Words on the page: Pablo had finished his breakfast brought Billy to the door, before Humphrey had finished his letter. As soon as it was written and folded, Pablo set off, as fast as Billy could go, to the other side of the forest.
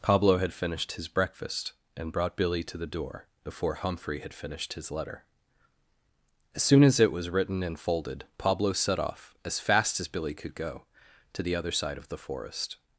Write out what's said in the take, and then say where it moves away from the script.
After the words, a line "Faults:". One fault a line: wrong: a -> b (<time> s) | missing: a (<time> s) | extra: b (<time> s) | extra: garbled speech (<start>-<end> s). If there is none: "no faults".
Pablo had finished his breakfast and brought Billy to the door, before Humphrey had finished his letter. As soon as it was written and folded, Pablo set off, as fast as Billy could go, to the other side of the forest.
Faults:
extra: and (1.9 s)